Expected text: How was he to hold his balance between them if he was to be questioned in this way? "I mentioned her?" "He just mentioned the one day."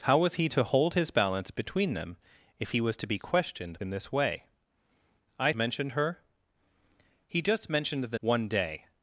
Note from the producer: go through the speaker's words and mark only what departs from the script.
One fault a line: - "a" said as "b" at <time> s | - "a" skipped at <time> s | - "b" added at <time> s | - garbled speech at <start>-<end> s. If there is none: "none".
none